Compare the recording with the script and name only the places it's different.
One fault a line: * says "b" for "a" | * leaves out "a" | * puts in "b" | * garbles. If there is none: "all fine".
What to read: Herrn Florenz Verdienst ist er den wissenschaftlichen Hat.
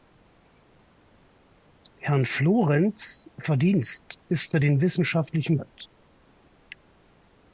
all fine